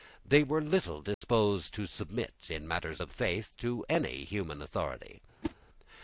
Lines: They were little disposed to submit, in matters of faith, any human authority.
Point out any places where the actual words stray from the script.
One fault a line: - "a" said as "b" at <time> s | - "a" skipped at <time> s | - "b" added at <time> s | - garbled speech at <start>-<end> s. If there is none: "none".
- "to" added at 3.6 s